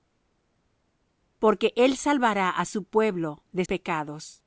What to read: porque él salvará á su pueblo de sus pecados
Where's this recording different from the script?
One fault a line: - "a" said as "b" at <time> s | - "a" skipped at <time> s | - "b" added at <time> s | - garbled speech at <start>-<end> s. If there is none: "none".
- "sus" skipped at 3.6 s